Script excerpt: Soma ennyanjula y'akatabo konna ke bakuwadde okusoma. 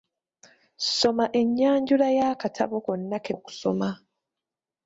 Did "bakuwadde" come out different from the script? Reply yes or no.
yes